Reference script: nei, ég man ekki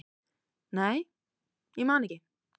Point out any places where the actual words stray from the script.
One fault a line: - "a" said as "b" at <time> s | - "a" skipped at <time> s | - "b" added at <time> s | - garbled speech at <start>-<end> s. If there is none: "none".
none